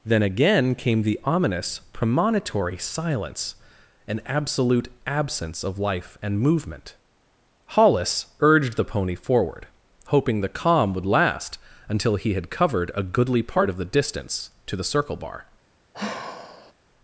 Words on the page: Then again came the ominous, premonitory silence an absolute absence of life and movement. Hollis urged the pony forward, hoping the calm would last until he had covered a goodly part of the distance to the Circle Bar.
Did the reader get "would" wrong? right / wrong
right